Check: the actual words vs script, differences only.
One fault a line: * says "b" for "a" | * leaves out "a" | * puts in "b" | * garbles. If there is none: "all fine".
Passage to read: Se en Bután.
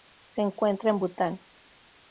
* puts in "encuentra"